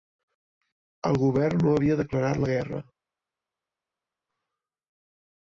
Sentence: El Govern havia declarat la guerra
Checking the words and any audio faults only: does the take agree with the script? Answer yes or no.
no